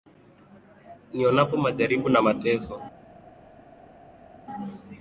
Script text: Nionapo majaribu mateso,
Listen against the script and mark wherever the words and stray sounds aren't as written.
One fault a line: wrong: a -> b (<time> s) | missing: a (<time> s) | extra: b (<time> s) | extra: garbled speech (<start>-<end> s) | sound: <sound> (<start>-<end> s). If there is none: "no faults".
extra: na (2.1 s)